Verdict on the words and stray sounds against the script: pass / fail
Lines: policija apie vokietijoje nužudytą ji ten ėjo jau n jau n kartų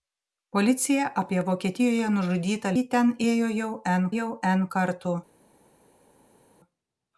pass